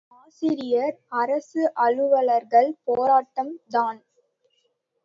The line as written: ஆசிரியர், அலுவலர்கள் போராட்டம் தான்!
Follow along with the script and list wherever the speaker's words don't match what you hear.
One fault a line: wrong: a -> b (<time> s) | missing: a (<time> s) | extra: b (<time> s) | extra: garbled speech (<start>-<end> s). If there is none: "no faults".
extra: அரசு (1.2 s)